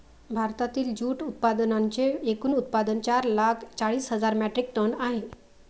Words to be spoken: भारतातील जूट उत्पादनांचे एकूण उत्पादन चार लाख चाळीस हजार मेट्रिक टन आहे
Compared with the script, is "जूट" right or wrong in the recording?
right